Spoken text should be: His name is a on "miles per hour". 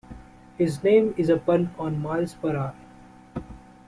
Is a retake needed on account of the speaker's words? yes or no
yes